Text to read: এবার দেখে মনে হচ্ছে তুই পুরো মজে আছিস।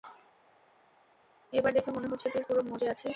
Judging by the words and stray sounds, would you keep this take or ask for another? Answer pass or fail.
pass